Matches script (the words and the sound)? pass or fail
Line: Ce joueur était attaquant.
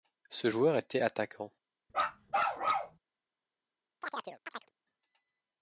fail